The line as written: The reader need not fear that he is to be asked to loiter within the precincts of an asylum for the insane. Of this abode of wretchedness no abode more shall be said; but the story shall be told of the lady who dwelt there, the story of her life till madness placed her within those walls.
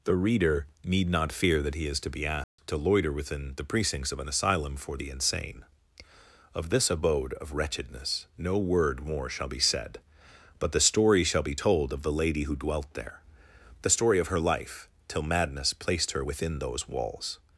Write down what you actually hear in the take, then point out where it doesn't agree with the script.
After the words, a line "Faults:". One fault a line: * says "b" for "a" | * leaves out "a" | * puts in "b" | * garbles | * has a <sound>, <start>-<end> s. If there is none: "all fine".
The reader need not fear that he is to be asked to loiter within the precincts of an asylum for the insane. Of this abode of wretchedness no word more shall be said; but the story shall be told of the lady who dwelt there, the story of her life till madness placed her within those walls.
Faults:
* has a dropout, 2.4-2.6 s
* says "word" for "abode"